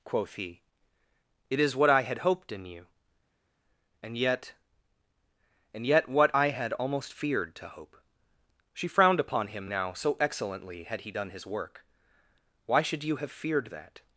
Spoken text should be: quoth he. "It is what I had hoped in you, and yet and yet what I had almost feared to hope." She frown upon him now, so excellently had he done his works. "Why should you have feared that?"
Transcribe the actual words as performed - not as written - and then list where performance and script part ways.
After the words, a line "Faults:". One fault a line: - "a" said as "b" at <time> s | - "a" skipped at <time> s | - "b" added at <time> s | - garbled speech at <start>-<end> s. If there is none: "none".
quoth he. "It is what I had hoped in you, and yet and yet what I had almost feared to hope." She frowned upon him now, so excellently had he done his work. "Why should you have feared that?"
Faults:
- "frown" said as "frowned" at 8.9 s
- "works" said as "work" at 11.5 s